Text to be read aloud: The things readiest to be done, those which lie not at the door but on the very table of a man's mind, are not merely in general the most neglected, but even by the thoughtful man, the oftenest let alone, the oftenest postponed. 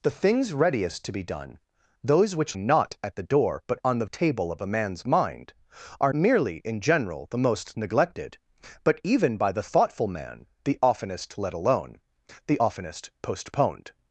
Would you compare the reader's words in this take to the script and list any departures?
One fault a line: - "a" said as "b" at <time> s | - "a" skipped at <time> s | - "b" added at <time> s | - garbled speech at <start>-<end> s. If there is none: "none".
- "lie" skipped at 2.6 s
- "very" skipped at 4.1 s
- "not" skipped at 6.1 s